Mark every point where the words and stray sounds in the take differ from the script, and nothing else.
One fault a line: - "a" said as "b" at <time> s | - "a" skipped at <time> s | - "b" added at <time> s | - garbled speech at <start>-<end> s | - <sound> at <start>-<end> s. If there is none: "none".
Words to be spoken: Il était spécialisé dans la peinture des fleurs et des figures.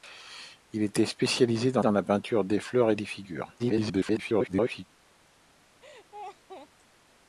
- "dans" added at 1.8 s
- garbled speech at 3.6-4.9 s
- laugh at 5.8-6.7 s